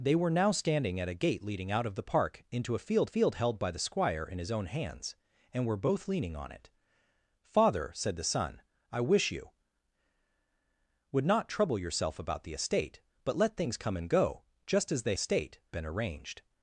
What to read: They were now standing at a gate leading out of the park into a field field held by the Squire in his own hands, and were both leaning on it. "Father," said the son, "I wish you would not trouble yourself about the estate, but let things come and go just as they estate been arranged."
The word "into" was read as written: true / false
true